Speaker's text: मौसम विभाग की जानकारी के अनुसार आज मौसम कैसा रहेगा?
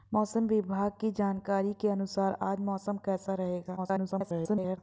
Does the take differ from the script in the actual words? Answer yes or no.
yes